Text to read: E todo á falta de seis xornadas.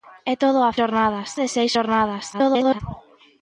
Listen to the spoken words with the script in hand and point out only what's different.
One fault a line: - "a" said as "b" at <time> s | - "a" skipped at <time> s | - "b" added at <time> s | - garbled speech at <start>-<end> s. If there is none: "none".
- "falta" said as "xornadas" at 0.8 s
- garbled speech at 2.3-2.8 s